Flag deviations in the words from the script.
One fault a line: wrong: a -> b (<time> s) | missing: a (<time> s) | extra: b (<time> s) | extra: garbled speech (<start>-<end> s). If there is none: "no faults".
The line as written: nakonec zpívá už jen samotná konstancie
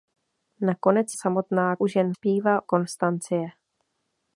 wrong: zpívá -> samotná (1.1 s)
wrong: samotná -> zpívá (2.1 s)